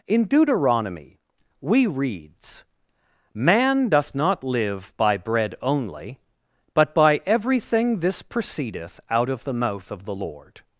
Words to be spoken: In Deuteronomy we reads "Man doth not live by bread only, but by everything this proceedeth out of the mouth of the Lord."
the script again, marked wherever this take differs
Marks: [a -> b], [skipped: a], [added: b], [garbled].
In Deuteronomy we reads "Man doth not live by bread only, but by everything this proceedeth out of the mouth of the Lord."